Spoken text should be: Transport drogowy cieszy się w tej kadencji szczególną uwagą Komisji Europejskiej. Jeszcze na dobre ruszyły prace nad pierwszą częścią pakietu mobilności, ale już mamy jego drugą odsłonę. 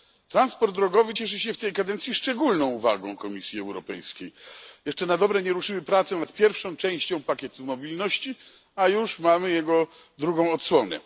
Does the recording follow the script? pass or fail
fail